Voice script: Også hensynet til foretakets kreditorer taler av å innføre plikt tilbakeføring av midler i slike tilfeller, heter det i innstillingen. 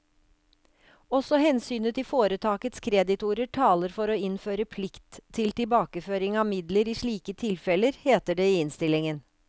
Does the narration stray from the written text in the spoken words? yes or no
yes